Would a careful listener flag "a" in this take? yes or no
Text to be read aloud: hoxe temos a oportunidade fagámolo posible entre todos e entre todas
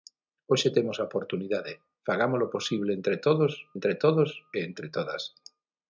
no